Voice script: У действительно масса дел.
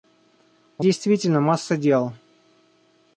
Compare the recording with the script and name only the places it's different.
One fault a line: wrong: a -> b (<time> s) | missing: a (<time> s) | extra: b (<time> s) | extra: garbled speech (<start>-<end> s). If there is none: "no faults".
no faults